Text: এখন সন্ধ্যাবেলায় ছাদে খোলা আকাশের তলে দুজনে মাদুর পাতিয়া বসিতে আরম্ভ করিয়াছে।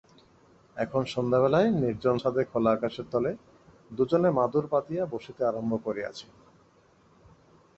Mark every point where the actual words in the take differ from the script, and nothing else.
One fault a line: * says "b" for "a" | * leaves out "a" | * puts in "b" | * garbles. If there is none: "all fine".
* puts in "নির্জন"